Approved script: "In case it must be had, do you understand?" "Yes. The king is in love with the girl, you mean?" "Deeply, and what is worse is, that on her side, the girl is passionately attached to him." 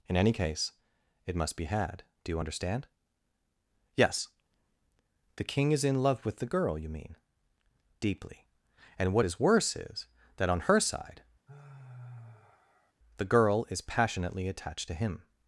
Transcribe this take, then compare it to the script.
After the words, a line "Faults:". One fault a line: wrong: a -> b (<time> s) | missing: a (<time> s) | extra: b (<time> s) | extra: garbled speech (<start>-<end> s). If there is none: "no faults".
"In any case it must be had, do you understand?" "Yes. The king is in love with the girl, you mean?" "Deeply, and what is worse is, that on her side, the girl is passionately attached to him."
Faults:
extra: any (0.2 s)